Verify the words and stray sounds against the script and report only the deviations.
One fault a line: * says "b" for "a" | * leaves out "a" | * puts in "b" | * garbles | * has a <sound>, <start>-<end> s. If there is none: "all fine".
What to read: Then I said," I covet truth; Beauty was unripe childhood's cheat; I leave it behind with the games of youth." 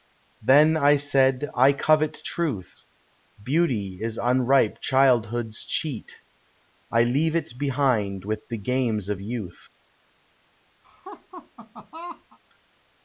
* says "is" for "was"
* has a laugh, 10.8-12.4 s